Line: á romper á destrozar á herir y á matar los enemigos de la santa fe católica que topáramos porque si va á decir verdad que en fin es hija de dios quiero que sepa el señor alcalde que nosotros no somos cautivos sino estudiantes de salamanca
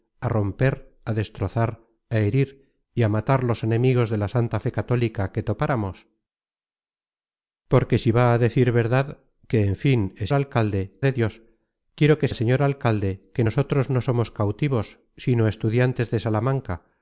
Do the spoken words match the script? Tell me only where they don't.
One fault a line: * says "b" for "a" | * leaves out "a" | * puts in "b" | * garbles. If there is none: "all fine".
* says "alcalde" for "hija"
* leaves out "sepa"